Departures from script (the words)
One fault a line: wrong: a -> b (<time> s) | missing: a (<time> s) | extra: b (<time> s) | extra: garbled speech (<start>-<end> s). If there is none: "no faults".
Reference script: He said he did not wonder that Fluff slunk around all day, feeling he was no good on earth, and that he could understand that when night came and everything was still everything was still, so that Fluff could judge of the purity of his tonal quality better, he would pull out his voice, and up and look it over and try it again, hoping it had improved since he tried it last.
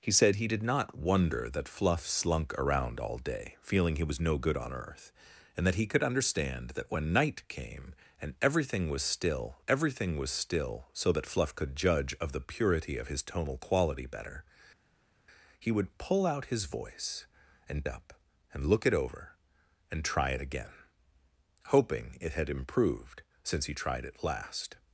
no faults